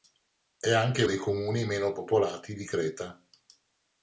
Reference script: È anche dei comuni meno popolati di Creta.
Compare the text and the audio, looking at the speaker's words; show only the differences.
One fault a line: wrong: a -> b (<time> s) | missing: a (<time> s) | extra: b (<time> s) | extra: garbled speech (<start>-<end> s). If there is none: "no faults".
no faults